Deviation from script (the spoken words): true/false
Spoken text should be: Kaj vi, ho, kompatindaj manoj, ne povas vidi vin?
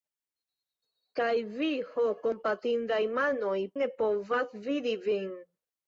false